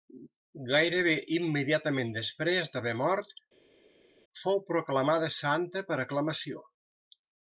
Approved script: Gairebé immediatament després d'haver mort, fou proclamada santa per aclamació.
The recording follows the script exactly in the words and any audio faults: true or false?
true